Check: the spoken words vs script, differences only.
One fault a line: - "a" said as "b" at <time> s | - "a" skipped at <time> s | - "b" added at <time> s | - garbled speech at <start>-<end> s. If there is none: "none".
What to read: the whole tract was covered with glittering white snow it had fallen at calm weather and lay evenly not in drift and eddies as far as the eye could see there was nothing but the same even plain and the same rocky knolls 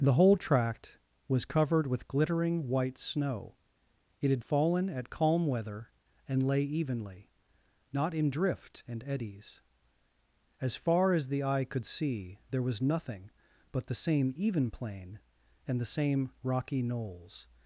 none